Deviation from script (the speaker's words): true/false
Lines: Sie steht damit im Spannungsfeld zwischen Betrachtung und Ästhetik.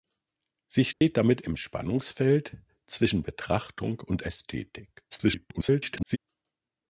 true